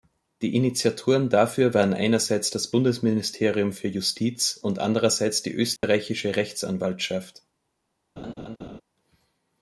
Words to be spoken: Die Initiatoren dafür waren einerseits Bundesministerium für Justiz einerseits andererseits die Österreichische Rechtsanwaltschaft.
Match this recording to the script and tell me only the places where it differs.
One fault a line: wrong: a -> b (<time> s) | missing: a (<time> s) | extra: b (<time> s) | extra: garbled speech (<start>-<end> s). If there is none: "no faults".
extra: das (2.5 s)
wrong: einerseits -> und (4.6 s)